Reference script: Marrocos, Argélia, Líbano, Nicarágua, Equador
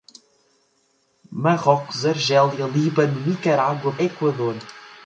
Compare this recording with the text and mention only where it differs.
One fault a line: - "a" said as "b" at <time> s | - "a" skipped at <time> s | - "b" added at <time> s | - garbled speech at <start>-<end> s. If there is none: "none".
none